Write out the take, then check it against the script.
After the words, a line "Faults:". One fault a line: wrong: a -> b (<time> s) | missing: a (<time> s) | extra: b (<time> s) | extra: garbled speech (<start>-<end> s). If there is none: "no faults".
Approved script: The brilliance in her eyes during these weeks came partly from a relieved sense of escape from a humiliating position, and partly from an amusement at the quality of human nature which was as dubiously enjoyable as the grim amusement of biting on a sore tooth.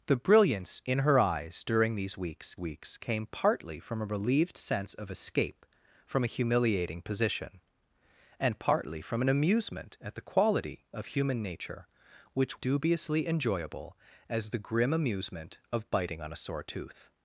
The brilliance in her eyes during these weeks weeks came partly from a relieved sense of escape from a humiliating position, and partly from an amusement at the quality of human nature which dubiously enjoyable as the grim amusement of biting on a sore tooth.
Faults:
extra: weeks (2.6 s)
missing: was as (12.6 s)